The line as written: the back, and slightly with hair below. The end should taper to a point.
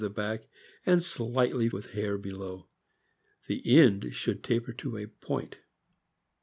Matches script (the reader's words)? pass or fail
pass